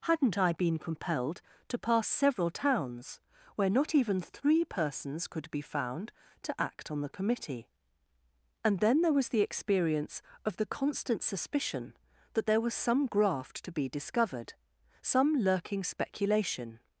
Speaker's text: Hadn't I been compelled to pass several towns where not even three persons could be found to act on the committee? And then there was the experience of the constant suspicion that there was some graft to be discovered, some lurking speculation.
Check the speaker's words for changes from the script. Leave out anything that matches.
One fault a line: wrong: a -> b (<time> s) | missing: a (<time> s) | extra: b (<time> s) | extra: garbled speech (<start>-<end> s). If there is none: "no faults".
no faults